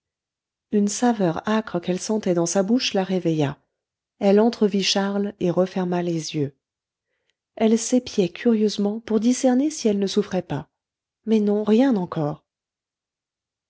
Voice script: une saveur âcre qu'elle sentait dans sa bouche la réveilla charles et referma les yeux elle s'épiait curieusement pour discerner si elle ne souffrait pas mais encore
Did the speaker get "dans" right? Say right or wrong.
right